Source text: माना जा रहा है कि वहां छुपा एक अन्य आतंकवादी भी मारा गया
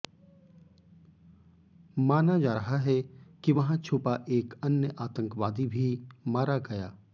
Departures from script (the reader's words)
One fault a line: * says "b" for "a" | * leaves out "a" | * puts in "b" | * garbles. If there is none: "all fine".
all fine